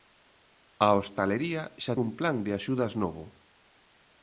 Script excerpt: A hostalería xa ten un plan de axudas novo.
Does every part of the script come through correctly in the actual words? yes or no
no